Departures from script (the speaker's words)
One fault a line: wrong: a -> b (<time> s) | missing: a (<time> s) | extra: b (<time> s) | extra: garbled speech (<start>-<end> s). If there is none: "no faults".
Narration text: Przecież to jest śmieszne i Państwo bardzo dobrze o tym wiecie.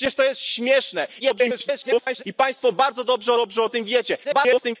extra: garbled speech (1.2-2.2 s)
extra: dobrze (3.3 s)
extra: garbled speech (4.2-4.8 s)